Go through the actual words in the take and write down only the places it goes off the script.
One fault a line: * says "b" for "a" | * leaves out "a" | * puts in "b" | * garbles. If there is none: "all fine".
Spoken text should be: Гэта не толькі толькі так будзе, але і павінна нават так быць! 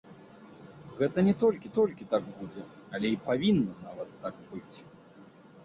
all fine